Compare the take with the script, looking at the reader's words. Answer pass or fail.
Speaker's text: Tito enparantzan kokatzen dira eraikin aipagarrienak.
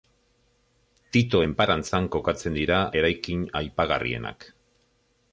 pass